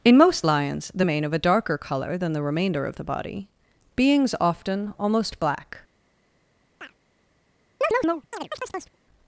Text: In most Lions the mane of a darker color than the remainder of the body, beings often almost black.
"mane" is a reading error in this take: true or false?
false